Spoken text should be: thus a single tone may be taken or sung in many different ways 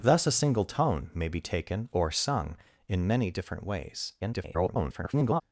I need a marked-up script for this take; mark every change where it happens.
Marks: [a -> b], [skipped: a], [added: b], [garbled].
thus a single tone may be taken or sung in many different ways [garbled]